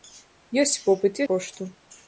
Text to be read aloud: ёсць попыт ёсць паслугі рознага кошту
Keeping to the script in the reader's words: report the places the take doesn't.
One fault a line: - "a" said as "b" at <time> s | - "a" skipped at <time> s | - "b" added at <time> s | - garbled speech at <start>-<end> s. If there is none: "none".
- "ёсць паслугі рознага" skipped at 1.2 s